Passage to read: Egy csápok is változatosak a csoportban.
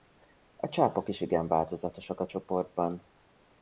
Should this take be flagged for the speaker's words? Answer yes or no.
yes